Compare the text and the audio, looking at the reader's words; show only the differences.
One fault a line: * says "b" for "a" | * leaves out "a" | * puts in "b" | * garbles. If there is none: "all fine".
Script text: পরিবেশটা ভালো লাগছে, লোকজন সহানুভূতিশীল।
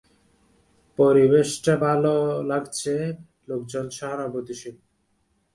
all fine